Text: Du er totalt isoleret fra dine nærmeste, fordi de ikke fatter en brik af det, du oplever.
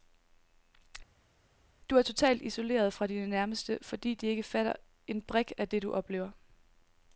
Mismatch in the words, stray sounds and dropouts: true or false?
false